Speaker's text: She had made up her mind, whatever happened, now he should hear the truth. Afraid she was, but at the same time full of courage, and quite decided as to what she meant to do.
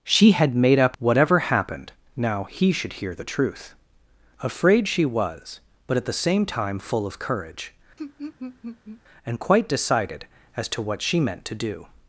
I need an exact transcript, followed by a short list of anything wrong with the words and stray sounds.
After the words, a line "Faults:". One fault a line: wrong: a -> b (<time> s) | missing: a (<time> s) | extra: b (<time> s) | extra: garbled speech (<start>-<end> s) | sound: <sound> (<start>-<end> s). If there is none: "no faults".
She had made up whatever happened, now he should hear the truth. Afraid she was, but at the same time full of courage, and quite decided as to what she meant to do.
Faults:
missing: her mind (1.0 s)
sound: laugh (8.0-9.0 s)